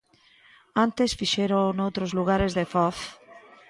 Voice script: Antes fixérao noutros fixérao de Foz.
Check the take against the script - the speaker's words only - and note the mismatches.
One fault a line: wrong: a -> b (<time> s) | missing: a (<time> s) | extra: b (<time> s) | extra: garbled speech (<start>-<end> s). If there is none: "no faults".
wrong: fixérao -> lugares (2.2 s)